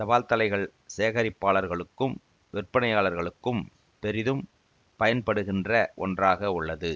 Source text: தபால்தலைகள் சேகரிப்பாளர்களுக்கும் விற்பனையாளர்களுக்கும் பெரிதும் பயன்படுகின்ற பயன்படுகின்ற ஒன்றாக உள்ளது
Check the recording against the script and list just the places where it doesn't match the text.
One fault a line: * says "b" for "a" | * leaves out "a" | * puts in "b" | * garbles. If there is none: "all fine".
* leaves out "பயன்படுகின்ற"